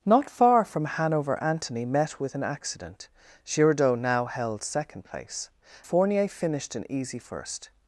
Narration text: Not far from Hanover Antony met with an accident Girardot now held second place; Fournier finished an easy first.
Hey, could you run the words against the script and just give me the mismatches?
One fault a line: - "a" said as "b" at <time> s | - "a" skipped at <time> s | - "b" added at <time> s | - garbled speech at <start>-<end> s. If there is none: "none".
none